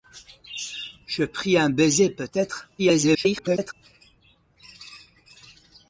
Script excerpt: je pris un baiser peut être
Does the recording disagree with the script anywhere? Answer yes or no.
yes